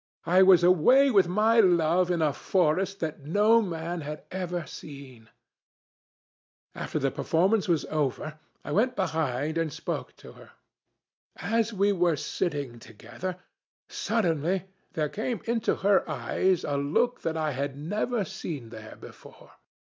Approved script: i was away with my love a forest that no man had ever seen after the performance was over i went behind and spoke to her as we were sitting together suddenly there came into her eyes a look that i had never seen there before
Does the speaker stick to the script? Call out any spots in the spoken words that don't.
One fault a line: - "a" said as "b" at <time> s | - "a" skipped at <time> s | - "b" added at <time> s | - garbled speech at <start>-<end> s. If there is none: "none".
- "in" added at 2.1 s